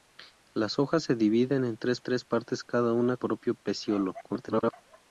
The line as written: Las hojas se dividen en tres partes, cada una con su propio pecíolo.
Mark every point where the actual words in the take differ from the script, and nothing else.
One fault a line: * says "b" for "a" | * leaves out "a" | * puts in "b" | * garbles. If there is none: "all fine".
* puts in "tres"
* leaves out "con su"
* garbles